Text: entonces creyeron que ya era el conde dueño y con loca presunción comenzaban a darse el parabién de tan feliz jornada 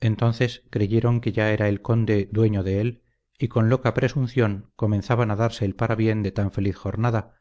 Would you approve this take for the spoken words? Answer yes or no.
no